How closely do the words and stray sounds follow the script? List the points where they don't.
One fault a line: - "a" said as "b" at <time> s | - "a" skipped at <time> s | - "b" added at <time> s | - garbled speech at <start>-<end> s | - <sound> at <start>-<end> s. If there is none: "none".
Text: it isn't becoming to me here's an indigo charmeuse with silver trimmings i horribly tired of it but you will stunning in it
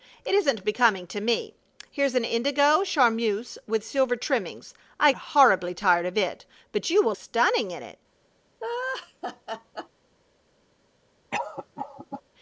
- laugh at 8.6-9.9 s
- cough at 11.3-12.2 s